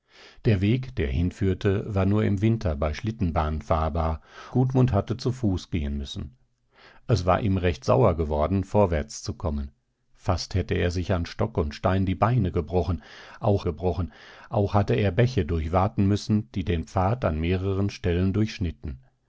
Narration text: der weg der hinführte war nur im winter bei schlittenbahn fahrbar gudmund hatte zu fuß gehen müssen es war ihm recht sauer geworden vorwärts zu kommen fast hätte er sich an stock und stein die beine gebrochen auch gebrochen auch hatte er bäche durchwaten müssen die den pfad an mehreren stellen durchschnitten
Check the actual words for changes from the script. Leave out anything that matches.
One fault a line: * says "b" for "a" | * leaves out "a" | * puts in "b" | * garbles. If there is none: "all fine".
all fine